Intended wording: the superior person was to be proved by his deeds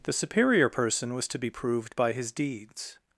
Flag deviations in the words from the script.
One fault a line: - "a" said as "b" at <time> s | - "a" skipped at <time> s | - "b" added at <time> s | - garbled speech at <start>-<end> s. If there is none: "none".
none